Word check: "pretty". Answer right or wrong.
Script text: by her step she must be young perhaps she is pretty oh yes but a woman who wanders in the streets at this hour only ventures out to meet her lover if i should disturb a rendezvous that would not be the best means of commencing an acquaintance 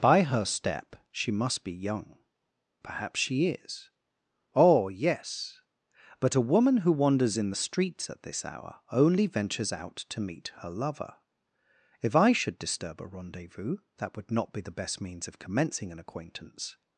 wrong